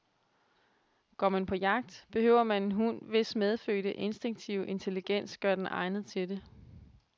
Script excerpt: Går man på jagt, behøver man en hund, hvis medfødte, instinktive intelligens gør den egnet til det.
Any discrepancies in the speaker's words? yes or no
no